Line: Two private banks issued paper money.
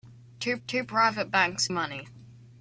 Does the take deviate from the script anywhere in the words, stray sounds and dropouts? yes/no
yes